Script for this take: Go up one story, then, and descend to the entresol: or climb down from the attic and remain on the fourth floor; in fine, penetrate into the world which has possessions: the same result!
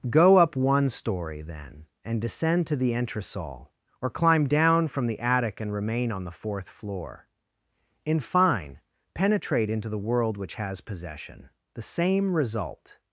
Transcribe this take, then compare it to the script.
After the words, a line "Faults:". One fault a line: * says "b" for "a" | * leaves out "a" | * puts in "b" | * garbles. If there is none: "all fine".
Go up one story, then, and descend to the entresol: or climb down from the attic and remain on the fourth floor; in fine, penetrate into the world which has possession: the same result!
Faults:
* says "possession" for "possessions"